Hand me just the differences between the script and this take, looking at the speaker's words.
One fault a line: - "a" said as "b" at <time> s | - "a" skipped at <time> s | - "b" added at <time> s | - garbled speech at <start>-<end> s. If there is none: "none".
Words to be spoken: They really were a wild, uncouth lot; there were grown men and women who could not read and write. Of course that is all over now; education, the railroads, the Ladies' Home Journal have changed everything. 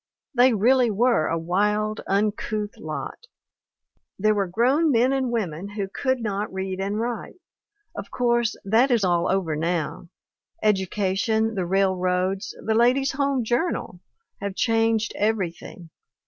none